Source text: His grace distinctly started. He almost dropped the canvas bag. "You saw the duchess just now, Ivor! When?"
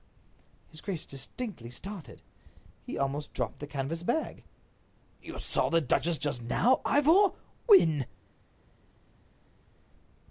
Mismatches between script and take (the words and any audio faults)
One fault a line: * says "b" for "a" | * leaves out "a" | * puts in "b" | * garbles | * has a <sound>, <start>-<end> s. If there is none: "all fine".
all fine